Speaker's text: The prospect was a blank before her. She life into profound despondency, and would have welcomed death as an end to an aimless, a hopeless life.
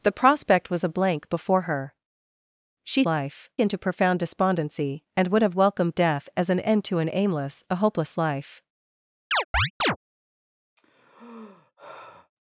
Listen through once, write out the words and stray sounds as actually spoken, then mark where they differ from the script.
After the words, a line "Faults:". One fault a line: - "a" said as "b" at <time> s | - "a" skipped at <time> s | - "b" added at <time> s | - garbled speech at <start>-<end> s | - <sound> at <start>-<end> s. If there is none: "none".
The prospect was a blank before her. She life into profound despondency, and would have welcomed death as an end to an aimless, a hopeless life.
Faults:
- chirp at 9.3-10.0 s
- sigh at 10.8-12.3 s